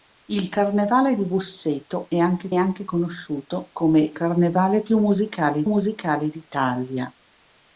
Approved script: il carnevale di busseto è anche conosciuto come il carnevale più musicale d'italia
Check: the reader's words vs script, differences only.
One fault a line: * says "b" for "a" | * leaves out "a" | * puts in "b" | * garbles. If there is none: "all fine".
* puts in "anche"
* leaves out "il"
* puts in "musicale"